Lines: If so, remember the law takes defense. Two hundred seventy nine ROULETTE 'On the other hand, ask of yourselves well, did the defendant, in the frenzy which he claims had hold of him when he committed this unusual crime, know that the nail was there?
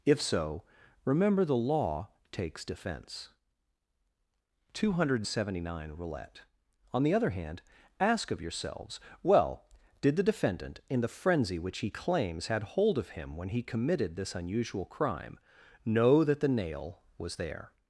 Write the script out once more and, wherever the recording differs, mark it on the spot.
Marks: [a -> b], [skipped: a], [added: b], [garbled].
If so, remember the law takes defense. Two hundred seventy nine ROULETTE 'On the other hand, ask of yourselves well, did the defendant, in the frenzy which he claims had hold of him when he committed this unusual crime, know that the nail was there?